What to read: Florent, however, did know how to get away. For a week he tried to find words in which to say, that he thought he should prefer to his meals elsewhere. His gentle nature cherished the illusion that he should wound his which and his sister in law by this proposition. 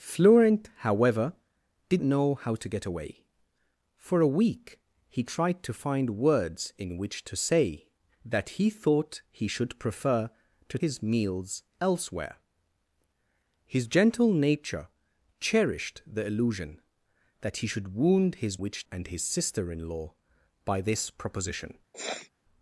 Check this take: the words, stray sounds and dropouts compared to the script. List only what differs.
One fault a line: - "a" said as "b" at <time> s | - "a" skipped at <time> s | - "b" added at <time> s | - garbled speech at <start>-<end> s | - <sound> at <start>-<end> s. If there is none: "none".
- sniff at 21.9-22.3 s